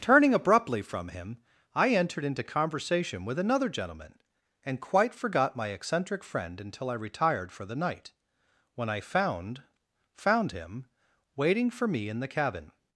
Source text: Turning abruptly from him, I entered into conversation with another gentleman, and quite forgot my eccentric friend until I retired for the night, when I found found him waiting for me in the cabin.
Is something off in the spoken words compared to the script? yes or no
no